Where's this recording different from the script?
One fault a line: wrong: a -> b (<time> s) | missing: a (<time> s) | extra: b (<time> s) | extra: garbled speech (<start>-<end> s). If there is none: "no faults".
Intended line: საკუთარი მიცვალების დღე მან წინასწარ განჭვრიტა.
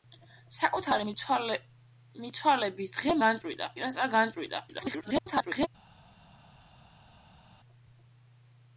wrong: მან -> განჭვრიტა (3.2 s)
extra: garbled speech (4.7-5.7 s)